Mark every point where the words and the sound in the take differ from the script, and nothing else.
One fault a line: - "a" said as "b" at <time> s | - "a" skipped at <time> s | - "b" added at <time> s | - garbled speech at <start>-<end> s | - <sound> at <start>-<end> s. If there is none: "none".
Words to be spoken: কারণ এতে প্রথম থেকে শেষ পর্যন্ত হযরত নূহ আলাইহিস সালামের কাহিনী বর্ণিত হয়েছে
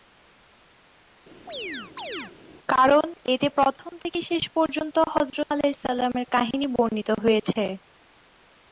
- chirp at 1.5-2.3 s
- "নূহ" skipped at 5.5 s